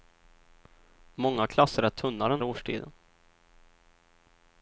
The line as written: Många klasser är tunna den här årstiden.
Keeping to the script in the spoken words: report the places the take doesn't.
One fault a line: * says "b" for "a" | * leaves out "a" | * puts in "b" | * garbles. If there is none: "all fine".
* leaves out "här"